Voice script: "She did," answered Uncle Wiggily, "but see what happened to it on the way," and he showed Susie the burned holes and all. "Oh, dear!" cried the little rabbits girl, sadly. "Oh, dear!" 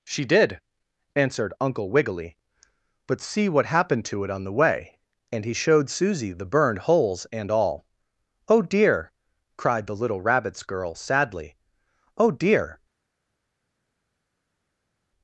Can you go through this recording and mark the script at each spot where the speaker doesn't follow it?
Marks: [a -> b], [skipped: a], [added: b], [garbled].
"She did," answered Uncle Wiggily, "but see what happened to it on the way," and he showed Susie the burned holes and all. "Oh, dear!" cried the little rabbits girl, sadly. "Oh, dear!"